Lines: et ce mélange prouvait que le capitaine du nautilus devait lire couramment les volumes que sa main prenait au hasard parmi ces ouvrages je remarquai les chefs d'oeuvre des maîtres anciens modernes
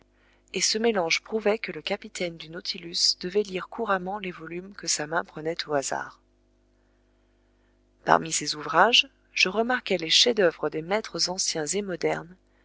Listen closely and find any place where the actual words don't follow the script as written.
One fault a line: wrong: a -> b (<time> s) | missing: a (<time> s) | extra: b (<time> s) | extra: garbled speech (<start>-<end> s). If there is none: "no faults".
extra: et (11.7 s)